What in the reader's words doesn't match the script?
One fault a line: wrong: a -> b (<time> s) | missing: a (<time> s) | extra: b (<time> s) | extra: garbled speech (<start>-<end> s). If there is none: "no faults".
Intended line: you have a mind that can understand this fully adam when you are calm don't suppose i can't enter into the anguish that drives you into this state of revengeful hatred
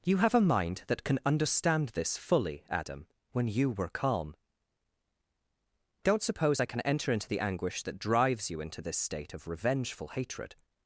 wrong: are -> were (3.7 s)
wrong: can't -> can (6.6 s)